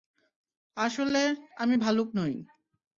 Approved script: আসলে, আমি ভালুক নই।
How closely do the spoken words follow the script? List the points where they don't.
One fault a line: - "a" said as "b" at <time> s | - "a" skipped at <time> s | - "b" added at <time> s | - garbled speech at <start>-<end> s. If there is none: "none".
none